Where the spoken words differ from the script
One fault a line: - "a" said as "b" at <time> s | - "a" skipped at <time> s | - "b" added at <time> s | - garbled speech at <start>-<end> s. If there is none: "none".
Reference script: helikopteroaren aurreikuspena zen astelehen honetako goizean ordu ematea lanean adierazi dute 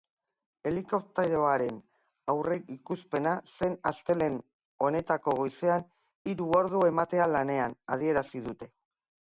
- "hiru" added at 6.3 s